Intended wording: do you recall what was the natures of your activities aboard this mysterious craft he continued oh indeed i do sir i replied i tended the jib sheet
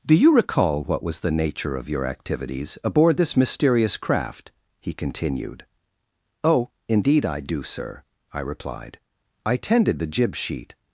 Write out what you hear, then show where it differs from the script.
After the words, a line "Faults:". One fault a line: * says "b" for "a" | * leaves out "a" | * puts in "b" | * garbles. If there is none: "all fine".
do you recall what was the nature of your activities aboard this mysterious craft he continued oh indeed i do sir i replied i tended the jib sheet
Faults:
* says "nature" for "natures"